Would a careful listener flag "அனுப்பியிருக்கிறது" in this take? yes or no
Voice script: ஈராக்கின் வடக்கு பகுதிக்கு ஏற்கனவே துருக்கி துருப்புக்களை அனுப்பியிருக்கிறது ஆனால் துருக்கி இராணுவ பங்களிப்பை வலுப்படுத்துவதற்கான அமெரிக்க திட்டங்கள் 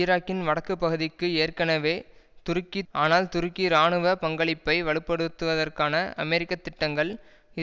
yes